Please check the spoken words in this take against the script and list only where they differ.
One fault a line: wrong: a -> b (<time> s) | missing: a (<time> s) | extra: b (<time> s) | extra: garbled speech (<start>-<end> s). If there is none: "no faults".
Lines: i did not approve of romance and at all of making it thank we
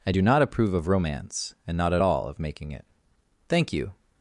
wrong: did -> do (0.1 s)
extra: not (1.8 s)
wrong: we -> you (3.7 s)